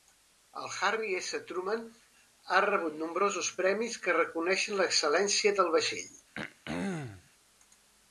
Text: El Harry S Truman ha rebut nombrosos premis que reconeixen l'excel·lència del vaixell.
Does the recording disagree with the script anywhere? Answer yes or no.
no